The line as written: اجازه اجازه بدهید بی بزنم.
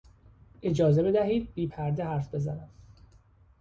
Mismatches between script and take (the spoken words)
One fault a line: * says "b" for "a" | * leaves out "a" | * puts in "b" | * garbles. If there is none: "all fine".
* leaves out "اجازه"
* puts in "پرده حرف"